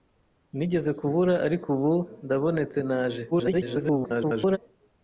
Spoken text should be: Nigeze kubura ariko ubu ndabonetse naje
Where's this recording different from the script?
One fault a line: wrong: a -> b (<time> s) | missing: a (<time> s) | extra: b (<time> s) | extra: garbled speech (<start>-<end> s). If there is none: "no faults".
extra: garbled speech (3.3-4.6 s)